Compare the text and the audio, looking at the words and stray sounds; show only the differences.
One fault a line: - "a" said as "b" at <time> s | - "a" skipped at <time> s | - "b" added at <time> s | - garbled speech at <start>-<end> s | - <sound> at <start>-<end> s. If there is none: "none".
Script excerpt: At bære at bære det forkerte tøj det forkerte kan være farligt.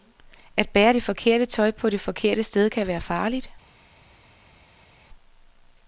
- "at bære" skipped at 0.9 s
- "på" added at 1.7 s
- "sted" added at 2.4 s